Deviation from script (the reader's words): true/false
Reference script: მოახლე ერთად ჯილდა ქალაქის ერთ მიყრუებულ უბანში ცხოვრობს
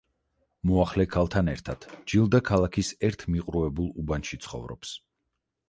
true